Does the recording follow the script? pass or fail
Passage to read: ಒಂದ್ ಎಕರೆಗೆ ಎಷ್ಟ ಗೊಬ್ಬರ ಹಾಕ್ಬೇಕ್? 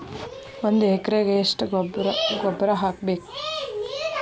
pass